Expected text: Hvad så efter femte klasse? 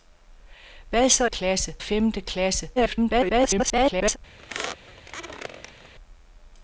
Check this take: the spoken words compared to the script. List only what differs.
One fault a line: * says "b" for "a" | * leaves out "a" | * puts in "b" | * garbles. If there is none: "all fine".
* says "klasse" for "efter"
* garbles